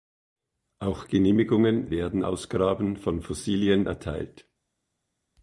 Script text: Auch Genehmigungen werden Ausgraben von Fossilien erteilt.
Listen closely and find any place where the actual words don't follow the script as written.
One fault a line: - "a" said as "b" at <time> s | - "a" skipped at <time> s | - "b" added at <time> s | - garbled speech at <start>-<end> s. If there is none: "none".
none